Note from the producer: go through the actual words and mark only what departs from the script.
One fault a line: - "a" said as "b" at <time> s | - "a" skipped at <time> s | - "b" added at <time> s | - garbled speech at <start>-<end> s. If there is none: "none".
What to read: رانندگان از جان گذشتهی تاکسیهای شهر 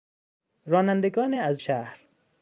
- "جان گذشتهی تاکسیهای" skipped at 1.6 s